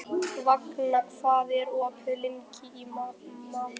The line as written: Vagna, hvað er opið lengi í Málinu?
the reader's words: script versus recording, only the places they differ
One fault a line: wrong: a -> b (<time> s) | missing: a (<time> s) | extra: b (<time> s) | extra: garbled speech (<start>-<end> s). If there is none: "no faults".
no faults